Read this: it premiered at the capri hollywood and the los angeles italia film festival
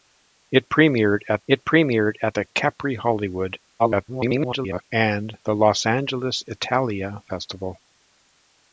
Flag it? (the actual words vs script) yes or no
yes